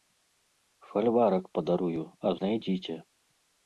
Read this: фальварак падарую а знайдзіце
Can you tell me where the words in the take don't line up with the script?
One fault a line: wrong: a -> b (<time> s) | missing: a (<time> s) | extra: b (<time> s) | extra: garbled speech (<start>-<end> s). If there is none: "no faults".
no faults